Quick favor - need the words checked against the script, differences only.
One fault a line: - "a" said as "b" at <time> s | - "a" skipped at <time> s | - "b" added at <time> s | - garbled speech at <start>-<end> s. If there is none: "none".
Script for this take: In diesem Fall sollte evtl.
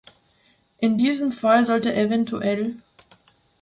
none